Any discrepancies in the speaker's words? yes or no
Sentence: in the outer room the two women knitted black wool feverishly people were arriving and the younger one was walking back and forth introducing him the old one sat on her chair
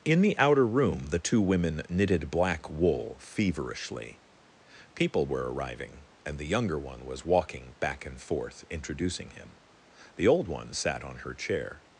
no